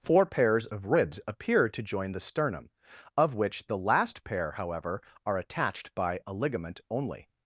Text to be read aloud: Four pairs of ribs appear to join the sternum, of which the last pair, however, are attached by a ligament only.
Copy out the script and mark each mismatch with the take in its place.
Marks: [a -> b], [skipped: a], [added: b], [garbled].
Four pairs of ribs appear to join the sternum, of which the last pair, however, are attached by a ligament only.